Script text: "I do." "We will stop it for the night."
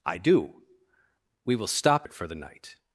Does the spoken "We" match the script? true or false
true